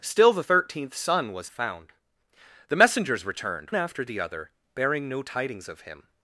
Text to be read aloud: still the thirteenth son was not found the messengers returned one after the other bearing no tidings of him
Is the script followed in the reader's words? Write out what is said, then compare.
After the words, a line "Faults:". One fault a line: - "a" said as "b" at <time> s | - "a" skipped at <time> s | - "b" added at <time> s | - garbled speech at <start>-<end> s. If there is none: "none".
still the thirteenth son was found the messengers returned after the other bearing no tidings of him
Faults:
- "not" skipped at 1.5 s
- "one" skipped at 3.7 s